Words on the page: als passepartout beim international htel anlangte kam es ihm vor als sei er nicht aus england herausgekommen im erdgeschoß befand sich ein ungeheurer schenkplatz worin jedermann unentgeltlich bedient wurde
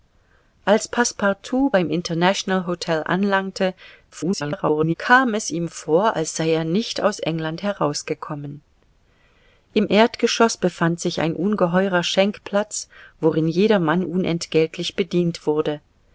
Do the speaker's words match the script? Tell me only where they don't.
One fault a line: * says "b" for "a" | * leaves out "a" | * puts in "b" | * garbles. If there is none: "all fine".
* garbles